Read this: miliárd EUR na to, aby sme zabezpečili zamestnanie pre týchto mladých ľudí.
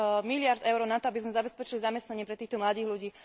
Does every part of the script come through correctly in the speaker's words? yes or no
yes